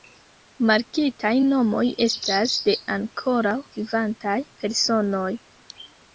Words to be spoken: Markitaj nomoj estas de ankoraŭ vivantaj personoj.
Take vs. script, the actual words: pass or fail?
pass